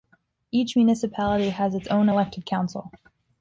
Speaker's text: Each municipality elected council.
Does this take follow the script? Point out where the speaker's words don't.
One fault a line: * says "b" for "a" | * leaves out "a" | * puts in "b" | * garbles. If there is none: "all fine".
* puts in "has its own"